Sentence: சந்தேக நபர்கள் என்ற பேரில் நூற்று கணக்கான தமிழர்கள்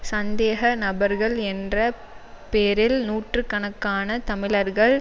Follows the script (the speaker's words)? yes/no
yes